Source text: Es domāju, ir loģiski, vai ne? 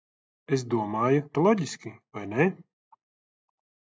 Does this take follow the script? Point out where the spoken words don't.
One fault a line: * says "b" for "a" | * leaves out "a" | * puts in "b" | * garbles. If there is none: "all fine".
all fine